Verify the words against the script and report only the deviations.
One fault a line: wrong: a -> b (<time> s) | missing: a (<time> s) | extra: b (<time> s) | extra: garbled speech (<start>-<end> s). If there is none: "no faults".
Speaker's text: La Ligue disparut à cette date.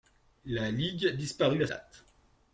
missing: cette (1.7 s)